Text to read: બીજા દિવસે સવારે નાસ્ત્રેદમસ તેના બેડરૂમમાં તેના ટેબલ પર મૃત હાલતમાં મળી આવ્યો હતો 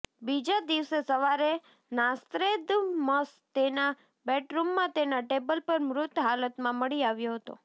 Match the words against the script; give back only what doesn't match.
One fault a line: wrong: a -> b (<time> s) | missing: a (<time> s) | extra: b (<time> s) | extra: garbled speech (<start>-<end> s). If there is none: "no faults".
no faults